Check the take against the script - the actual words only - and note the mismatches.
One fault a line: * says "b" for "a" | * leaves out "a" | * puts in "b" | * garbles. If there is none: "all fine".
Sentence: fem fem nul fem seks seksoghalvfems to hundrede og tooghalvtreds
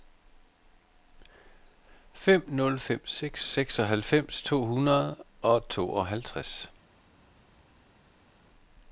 * leaves out "fem"